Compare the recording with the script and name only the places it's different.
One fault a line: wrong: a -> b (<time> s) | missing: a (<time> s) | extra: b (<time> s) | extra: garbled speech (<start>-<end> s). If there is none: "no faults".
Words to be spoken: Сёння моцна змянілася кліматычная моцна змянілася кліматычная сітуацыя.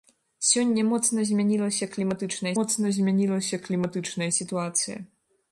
no faults